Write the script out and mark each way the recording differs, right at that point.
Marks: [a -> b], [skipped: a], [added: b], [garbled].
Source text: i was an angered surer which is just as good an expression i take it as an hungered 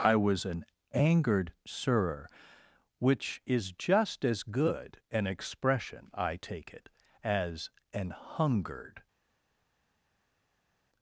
i was an angered surer which is just as good an expression i take it as an hungered